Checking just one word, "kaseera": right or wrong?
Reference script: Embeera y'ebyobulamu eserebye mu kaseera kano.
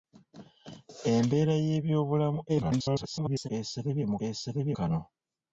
wrong